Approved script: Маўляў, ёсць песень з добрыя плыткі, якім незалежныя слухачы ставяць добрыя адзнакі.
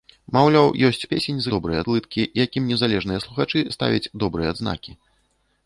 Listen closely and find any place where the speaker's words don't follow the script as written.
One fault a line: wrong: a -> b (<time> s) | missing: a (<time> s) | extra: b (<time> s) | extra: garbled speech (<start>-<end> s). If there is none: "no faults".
no faults